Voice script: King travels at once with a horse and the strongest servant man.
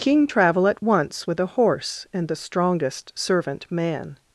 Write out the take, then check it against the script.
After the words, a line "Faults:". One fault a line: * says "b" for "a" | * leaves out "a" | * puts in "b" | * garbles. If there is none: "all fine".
King travel at once with a horse and the strongest servant man.
Faults:
* says "travel" for "travels"